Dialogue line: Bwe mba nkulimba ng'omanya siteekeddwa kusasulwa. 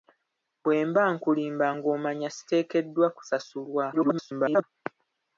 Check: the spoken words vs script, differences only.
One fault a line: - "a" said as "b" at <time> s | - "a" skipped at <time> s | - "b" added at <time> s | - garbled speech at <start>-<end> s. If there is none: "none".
- garbled speech at 3.9-4.6 s